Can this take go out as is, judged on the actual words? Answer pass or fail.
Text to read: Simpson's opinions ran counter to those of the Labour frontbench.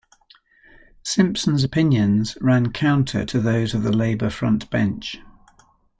pass